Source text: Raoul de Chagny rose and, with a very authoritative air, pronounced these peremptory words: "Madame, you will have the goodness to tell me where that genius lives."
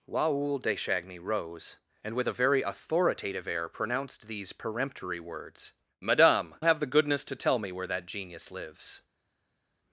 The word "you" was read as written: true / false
false